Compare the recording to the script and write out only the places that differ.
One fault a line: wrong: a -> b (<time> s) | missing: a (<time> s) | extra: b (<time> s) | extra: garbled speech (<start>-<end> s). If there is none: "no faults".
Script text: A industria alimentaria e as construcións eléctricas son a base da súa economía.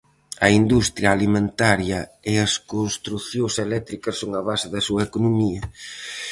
no faults